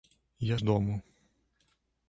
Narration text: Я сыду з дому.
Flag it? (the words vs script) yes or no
yes